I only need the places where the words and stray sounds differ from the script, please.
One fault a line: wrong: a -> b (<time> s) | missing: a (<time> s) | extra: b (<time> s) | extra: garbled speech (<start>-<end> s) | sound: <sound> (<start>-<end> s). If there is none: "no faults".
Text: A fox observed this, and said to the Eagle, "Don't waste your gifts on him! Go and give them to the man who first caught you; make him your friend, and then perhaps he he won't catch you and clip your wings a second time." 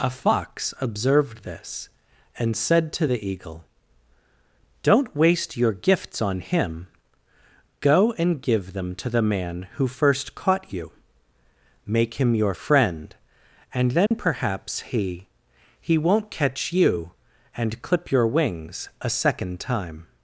sound: dropout (14.1-14.1 s)